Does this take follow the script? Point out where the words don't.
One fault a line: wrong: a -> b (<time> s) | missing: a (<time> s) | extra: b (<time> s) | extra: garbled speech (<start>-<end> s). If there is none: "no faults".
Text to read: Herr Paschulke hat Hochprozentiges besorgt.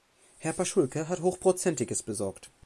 no faults